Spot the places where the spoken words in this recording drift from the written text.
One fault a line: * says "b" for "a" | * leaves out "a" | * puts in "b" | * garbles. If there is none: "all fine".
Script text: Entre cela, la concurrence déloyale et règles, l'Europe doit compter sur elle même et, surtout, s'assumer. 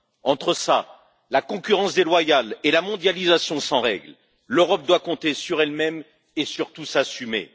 * puts in "la mondialisation sans"